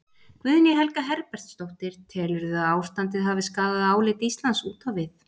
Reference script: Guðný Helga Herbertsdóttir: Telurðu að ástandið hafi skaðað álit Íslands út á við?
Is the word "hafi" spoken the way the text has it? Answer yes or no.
yes